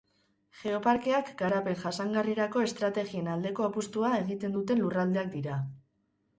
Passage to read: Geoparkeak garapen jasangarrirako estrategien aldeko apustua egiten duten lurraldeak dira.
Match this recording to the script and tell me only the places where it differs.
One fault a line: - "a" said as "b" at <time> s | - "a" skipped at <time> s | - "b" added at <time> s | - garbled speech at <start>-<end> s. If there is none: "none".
none